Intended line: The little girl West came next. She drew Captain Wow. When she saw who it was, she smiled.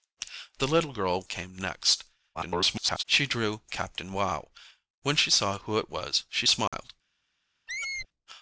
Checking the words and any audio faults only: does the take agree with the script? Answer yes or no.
no